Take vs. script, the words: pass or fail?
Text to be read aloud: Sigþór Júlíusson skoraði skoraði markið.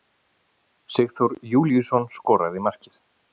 fail